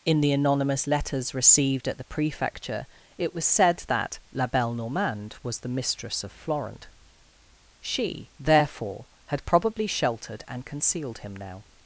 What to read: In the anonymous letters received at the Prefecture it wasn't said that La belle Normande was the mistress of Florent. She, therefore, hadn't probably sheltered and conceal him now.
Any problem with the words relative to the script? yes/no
yes